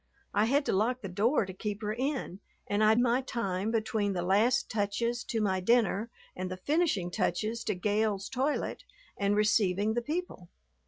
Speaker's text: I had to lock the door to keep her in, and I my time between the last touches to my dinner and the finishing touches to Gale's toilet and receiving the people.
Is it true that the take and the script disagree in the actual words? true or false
false